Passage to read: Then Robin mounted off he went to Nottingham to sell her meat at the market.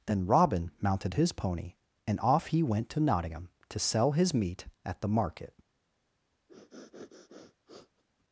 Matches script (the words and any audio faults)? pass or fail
fail